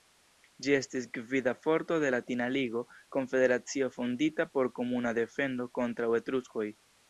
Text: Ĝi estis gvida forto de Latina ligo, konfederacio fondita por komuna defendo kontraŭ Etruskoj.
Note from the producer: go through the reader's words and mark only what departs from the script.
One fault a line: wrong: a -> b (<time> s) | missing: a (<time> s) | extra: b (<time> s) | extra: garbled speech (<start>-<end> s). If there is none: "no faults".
no faults